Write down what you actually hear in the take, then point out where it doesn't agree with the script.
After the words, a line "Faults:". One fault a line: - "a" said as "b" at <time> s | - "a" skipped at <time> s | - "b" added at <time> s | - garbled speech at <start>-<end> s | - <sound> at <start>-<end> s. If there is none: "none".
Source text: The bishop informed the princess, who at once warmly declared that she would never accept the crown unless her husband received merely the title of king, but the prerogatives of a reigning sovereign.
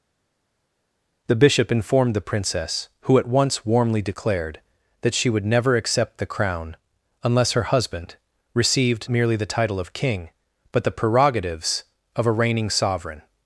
The bishop informed the princess, who at once warmly declared that she would never accept the crown unless her husband received merely the title of king, but the prerogatives of a reigning sovereign.
Faults:
none